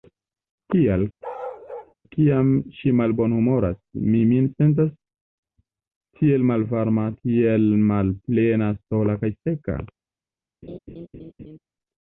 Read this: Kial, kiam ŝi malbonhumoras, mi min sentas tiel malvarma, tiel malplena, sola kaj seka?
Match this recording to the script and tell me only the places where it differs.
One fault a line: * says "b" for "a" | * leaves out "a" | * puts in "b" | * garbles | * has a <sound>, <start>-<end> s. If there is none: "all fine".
* has a bark, 1.2-1.9 s
* has a laugh, 10.6-11.6 s